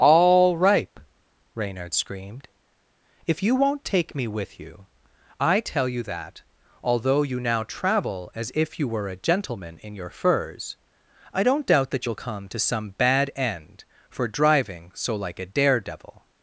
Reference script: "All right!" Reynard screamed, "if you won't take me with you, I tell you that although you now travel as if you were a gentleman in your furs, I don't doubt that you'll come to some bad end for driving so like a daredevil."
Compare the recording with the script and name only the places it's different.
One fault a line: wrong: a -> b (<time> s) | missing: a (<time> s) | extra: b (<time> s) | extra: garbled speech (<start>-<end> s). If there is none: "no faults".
wrong: right -> ripe (0.6 s)